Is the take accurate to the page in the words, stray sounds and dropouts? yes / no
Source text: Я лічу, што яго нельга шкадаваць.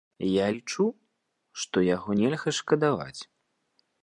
yes